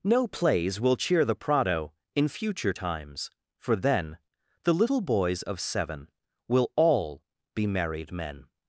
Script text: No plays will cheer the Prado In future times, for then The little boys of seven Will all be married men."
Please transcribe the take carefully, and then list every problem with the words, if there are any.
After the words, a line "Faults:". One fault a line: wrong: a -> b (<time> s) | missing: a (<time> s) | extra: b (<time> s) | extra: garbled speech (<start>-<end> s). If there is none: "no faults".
No plays will cheer the Prado In future times, for then The little boys of seven Will all be married men."
Faults:
no faults